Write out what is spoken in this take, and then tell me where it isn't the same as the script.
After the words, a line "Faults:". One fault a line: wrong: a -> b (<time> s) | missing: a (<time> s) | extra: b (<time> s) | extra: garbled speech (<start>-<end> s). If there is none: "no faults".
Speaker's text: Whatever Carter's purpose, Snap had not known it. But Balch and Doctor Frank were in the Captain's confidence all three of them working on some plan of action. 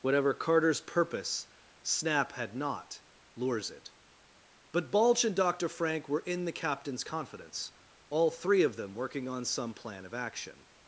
Whatever Carter's purpose, Snap had not lures it. But Balch and Doctor Frank were in the Captain's confidence all three of them working on some plan of action.
Faults:
wrong: known -> lures (3.4 s)